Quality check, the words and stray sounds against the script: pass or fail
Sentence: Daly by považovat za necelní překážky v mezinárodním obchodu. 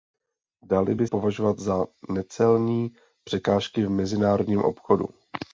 pass